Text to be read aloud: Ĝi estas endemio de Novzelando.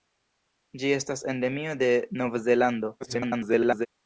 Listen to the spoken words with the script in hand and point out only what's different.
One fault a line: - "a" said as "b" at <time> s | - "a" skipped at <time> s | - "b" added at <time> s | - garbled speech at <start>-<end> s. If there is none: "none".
- garbled speech at 3.0-3.9 s